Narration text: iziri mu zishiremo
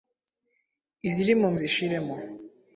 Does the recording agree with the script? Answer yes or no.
yes